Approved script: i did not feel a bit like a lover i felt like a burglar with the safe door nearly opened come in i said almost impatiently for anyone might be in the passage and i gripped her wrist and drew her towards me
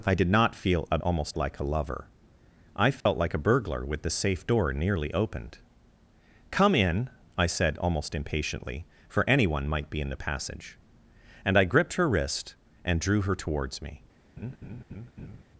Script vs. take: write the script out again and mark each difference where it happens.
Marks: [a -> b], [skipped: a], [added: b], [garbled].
i did not feel a [bit -> almost] like a lover i felt like a burglar with the safe door nearly opened come in i said almost impatiently for anyone might be in the passage and i gripped her wrist and drew her towards me